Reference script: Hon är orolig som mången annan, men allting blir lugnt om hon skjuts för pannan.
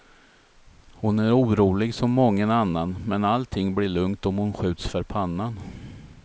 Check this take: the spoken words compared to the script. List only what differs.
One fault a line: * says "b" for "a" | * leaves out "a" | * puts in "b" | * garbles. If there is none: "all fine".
all fine